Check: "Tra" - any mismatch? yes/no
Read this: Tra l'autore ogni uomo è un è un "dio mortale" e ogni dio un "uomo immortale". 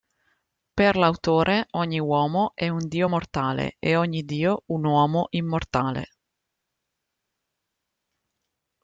yes